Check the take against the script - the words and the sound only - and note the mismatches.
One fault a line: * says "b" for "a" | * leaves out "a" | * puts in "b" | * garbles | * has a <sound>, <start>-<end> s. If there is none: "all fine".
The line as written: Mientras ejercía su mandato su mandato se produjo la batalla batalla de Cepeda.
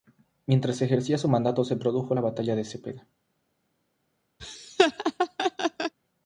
* leaves out "su mandato"
* leaves out "batalla"
* has a laugh, 4.4-5.9 s